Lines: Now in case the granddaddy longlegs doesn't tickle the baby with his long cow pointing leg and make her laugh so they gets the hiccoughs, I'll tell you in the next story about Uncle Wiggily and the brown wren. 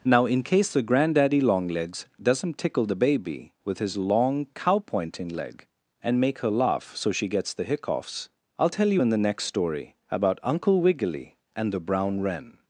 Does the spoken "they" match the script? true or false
false